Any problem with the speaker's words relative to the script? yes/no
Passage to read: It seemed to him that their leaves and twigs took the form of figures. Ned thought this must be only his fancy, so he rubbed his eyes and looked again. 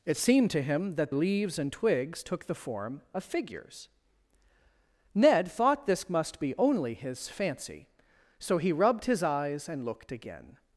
yes